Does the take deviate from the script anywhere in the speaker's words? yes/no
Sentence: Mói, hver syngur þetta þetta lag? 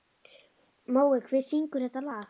yes